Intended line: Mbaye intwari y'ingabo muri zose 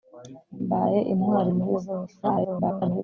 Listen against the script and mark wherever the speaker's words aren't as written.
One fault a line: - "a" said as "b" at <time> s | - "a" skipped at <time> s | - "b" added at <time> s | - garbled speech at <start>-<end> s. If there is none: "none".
- "y'ingabo" skipped at 1.5 s
- garbled speech at 2.2-3.0 s